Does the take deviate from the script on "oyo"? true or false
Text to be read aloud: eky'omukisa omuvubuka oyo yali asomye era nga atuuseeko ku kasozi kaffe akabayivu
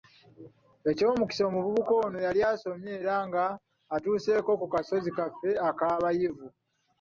true